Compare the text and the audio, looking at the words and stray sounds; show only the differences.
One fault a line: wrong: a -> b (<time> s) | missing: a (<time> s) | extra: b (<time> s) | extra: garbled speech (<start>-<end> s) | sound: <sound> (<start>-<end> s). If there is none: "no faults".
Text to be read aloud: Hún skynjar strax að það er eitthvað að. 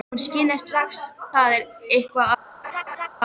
missing: að (1.0 s)
sound: laugh (2.6-3.1 s)